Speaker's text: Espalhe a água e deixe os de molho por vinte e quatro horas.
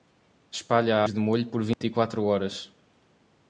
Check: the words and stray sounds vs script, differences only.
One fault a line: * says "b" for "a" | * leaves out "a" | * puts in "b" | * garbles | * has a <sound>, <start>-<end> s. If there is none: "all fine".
* leaves out "água e deixe"
* has a dropout, 1.7-1.8 s